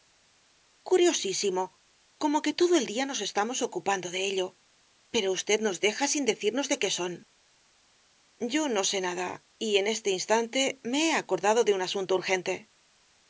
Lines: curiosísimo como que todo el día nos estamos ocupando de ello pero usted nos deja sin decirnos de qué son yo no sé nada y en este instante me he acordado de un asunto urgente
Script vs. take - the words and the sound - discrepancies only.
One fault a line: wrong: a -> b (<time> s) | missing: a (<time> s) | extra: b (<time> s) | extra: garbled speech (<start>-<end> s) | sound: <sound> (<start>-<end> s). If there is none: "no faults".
no faults